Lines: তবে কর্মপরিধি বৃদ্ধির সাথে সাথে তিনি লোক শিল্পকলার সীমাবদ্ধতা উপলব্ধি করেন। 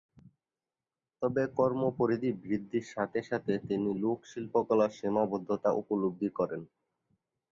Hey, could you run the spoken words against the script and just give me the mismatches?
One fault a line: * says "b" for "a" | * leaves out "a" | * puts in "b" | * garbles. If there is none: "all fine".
all fine